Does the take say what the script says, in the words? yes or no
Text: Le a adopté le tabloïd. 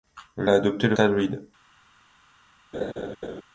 yes